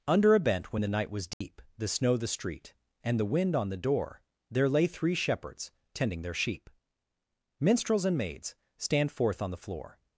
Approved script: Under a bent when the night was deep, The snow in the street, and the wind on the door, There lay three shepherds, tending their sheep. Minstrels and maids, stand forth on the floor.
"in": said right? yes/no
no